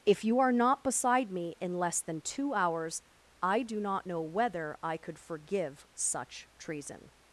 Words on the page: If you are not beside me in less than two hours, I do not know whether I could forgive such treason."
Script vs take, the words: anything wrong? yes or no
no